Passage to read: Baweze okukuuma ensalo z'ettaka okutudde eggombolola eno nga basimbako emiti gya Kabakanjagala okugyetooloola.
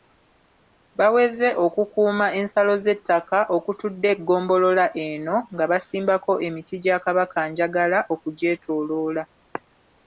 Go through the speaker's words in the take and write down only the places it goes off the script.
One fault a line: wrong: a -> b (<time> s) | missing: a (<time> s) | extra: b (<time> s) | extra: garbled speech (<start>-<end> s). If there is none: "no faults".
no faults